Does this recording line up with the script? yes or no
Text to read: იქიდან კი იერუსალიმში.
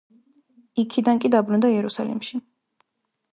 no